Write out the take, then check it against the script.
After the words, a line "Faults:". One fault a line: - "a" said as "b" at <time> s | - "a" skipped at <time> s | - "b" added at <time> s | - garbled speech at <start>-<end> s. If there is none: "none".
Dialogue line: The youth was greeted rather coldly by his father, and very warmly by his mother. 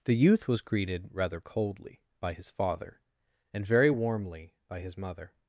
The youth was greeted rather coldly by his father, and very warmly by his mother.
Faults:
none